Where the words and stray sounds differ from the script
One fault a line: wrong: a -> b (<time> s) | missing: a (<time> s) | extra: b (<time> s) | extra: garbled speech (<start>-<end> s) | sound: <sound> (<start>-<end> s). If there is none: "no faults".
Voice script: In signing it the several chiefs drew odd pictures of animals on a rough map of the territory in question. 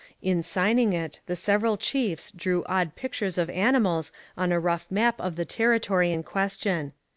no faults